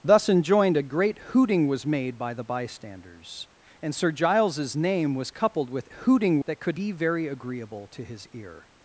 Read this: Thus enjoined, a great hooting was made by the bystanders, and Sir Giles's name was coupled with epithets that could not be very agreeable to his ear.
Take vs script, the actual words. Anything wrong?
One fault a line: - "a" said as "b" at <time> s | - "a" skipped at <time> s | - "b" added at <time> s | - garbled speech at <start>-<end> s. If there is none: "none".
- "epithets" said as "hooting" at 5.9 s
- "not" skipped at 6.8 s